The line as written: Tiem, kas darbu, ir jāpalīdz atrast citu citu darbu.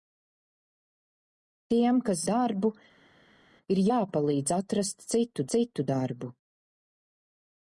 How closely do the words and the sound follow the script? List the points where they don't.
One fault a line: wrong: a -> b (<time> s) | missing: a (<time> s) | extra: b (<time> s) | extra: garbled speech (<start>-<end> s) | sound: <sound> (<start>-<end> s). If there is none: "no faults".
no faults